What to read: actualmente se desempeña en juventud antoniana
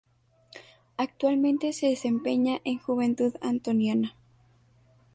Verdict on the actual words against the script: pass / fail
pass